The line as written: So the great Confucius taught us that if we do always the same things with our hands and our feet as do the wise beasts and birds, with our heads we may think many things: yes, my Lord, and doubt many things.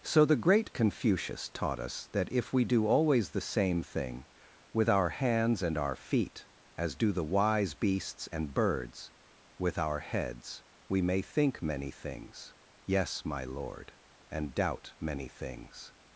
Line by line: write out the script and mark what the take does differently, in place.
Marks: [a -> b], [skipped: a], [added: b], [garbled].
So the great Confucius taught us that if we do always the same [things -> thing] with our hands and our feet as do the wise beasts and birds, with our heads we may think many things: yes, my Lord, and doubt many things.